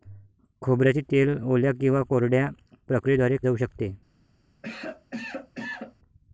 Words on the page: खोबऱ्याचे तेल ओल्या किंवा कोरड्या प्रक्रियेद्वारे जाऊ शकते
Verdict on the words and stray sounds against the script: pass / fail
fail